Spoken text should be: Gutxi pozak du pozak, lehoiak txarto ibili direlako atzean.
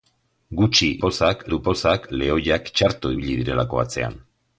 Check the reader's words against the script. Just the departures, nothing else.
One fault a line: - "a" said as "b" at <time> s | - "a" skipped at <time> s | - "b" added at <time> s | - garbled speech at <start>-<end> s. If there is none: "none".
none